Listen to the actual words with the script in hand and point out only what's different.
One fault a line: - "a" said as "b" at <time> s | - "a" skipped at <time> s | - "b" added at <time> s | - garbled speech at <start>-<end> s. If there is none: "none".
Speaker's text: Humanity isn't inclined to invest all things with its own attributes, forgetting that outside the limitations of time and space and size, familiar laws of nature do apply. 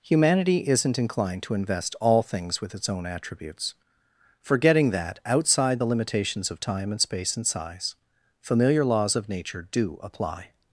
none